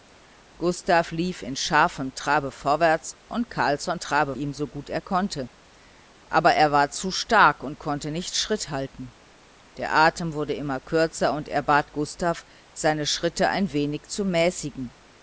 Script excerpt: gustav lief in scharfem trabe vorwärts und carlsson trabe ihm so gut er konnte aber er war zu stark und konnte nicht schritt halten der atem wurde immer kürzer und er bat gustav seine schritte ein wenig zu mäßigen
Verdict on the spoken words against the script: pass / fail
pass